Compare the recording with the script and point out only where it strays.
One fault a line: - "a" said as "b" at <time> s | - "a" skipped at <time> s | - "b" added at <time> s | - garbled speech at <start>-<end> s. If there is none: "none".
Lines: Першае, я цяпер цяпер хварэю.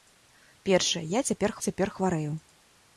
none